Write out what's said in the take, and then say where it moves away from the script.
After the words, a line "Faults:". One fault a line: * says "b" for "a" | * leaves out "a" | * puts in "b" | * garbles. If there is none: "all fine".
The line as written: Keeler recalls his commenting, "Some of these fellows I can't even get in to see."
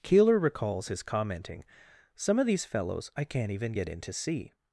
Keeler recalls his commenting, "Some of these fellows I can't even get in to see."
Faults:
all fine